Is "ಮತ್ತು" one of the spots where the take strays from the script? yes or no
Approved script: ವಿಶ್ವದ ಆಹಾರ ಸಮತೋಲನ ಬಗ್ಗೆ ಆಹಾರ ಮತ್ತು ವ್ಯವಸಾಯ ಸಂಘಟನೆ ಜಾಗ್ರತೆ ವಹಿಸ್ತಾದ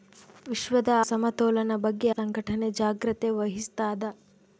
yes